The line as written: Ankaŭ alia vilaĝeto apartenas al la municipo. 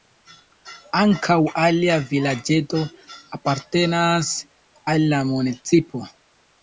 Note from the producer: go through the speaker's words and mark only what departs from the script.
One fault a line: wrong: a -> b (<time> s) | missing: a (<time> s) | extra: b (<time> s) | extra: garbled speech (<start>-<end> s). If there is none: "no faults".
no faults